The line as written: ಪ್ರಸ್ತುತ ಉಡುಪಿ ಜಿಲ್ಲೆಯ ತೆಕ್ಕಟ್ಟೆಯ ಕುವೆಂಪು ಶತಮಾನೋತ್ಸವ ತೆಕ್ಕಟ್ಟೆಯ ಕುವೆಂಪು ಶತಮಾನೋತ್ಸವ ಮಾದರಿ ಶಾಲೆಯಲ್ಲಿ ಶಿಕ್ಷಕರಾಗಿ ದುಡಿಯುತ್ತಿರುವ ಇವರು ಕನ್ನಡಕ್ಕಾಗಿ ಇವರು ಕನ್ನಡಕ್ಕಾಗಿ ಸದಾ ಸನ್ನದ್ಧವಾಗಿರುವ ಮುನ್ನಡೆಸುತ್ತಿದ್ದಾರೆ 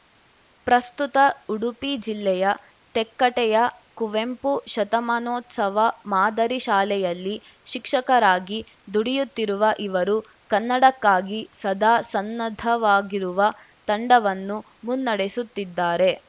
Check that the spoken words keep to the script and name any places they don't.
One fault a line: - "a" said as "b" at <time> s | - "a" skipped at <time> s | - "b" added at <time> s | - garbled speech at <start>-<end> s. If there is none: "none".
- "ತೆಕ್ಕಟ್ಟೆಯ ಕುವೆಂಪು ಶತಮಾನೋತ್ಸವ" skipped at 5.8 s
- "ಇವರು ಕನ್ನಡಕ್ಕಾಗಿ" skipped at 11.4 s
- "ತಂಡವನ್ನು" added at 13.9 s